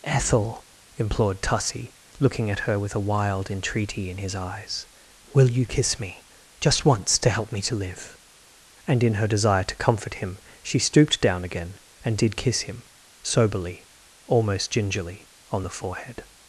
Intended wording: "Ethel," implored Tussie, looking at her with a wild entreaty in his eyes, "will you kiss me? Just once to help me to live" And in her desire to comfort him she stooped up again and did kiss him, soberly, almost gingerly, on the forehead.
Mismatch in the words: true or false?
true